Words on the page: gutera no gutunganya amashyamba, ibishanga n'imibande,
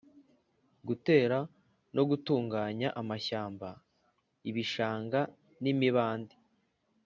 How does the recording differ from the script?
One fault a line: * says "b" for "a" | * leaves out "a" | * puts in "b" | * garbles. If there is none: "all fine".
all fine